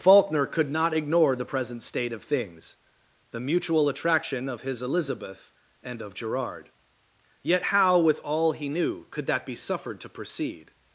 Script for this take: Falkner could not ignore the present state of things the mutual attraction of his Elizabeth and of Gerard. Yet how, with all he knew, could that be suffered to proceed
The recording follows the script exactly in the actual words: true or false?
true